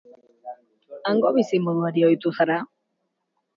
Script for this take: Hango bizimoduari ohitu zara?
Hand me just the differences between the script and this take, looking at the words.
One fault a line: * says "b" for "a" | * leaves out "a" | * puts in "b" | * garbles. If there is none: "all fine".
all fine